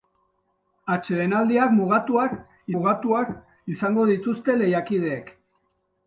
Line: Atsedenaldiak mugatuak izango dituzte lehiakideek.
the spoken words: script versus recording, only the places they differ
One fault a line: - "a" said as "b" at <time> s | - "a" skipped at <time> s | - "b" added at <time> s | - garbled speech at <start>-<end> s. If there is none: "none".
- "mugatuak" added at 2.7 s